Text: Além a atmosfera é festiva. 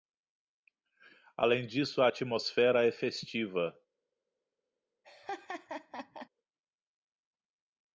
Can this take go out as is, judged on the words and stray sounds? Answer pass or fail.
fail